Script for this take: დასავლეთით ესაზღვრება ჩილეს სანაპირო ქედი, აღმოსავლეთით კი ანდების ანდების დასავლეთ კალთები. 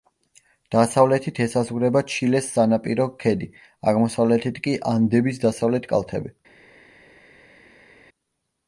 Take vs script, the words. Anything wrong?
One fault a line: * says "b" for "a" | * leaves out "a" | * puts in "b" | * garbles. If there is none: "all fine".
* leaves out "ანდების"